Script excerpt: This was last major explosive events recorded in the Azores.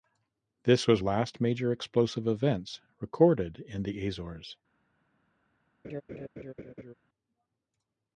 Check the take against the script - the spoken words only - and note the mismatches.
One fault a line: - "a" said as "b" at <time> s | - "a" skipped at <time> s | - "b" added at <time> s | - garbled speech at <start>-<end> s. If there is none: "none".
none